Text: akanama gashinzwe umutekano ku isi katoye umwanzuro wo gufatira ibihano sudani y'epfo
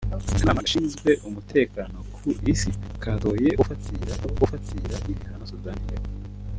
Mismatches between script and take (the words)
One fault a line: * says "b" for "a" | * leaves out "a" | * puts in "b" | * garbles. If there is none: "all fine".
* says "gufatira" for "umwanzuro"